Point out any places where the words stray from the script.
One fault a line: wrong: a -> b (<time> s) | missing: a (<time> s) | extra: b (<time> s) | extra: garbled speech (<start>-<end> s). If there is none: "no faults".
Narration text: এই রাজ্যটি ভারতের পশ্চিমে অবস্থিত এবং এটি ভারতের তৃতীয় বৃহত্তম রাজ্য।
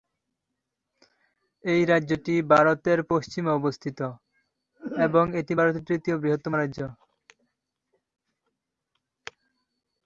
no faults